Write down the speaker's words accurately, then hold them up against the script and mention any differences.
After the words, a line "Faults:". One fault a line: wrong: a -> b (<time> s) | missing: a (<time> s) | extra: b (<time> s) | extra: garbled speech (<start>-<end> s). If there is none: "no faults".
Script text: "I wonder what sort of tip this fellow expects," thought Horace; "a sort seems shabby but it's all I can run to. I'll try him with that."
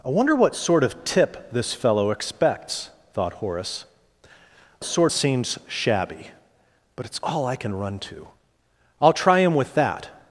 "I wonder what sort of tip this fellow expects," thought Horace; "a sort seems shabby but it's all I can run to. I'll try him with that."
Faults:
no faults